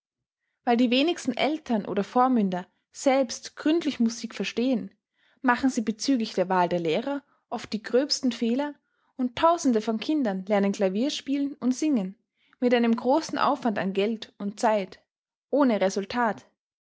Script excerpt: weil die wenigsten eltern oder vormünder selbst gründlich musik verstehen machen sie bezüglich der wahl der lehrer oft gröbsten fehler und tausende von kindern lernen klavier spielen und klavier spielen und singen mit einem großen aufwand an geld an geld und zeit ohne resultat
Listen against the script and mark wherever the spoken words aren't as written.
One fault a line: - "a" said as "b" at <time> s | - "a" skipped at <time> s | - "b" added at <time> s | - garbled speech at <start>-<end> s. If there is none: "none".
- "die" added at 7.7 s
- "klavier spielen und" skipped at 11.8 s
- "an geld" skipped at 14.3 s